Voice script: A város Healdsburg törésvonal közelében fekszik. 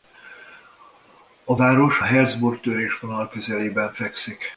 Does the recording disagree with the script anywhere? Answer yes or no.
no